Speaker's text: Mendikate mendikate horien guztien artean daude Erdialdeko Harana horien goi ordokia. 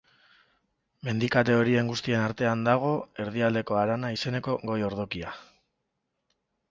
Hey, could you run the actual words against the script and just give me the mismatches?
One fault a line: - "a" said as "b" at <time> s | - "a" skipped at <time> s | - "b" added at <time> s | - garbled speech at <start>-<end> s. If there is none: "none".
- "mendikate" skipped at 1.6 s
- "daude" said as "dago" at 2.7 s
- "horien" said as "izeneko" at 4.1 s